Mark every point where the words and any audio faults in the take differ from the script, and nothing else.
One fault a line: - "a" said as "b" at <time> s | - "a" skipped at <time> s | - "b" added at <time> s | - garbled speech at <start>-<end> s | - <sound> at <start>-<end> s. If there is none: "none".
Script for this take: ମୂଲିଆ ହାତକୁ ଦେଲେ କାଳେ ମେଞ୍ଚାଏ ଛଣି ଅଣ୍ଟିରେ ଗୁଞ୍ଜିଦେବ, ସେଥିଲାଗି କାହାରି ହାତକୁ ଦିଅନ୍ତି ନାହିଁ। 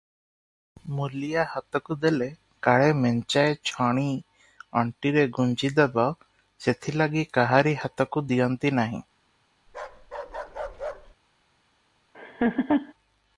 - bark at 9.7-11.2 s
- laugh at 12.1-12.9 s